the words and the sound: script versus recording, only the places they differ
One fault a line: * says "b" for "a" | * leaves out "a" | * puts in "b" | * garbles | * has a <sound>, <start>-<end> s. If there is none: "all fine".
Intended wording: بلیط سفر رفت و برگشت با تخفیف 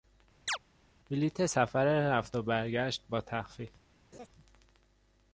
* has a chirp, 0.5-0.6 s
* has a laugh, 4.1-4.3 s